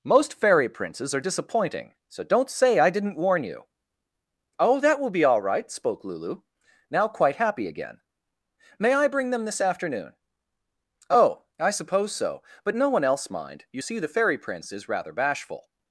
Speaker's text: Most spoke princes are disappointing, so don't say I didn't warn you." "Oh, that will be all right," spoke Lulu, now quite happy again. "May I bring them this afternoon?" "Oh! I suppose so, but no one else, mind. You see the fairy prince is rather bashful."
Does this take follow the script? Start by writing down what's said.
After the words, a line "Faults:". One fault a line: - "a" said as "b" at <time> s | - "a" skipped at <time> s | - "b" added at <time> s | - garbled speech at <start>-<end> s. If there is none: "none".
Most fairy princes are disappointing, so don't say I didn't warn you." "Oh, that will be all right," spoke Lulu, now quite happy again. "May I bring them this afternoon?" "Oh! I suppose so, but no one else, mind. You see the fairy prince is rather bashful."
Faults:
- "spoke" said as "fairy" at 0.3 s